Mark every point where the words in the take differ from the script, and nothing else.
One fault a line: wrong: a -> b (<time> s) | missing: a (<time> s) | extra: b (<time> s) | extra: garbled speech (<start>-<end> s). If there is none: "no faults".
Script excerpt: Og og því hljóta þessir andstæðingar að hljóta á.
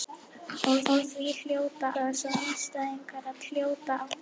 no faults